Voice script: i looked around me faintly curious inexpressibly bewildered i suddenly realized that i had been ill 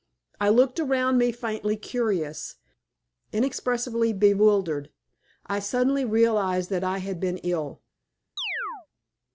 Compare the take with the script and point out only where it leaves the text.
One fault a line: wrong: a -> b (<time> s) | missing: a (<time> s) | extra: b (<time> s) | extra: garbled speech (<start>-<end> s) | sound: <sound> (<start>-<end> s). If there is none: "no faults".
sound: chirp (8.4-8.9 s)